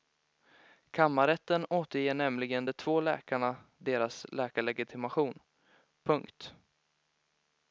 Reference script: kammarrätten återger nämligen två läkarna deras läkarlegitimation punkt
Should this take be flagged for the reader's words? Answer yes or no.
yes